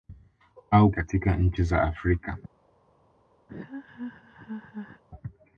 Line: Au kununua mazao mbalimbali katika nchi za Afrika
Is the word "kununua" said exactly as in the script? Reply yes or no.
no